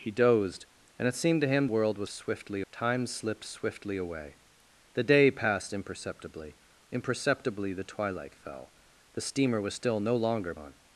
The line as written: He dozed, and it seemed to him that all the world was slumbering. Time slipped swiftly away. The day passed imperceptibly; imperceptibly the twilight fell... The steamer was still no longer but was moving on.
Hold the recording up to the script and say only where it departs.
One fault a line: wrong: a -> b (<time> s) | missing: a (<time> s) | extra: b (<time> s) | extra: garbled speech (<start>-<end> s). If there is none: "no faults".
missing: that all the (1.7 s)
wrong: slumbering -> swiftly (2.1 s)
missing: but was moving (10.5 s)